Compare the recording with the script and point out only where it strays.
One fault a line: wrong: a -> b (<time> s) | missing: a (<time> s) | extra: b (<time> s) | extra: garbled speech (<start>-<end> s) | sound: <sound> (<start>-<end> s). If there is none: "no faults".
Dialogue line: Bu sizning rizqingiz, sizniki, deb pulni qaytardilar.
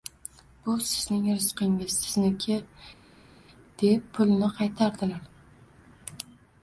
no faults